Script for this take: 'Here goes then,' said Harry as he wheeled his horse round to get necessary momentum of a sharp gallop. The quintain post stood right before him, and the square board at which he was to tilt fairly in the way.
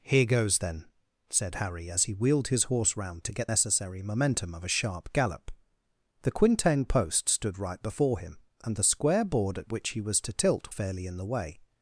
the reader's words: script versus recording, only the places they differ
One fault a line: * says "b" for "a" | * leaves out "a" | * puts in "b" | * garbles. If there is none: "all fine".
all fine